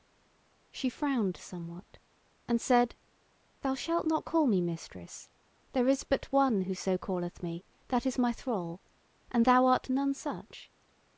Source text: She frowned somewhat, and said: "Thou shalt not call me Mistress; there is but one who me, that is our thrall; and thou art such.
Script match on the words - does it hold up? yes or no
no